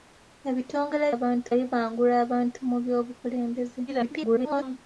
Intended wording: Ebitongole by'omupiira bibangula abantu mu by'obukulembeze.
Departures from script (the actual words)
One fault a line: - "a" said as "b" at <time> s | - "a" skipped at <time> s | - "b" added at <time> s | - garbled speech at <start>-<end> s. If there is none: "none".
- "by'omupiira" said as "abantu" at 1.1 s
- garbled speech at 3.9-4.8 s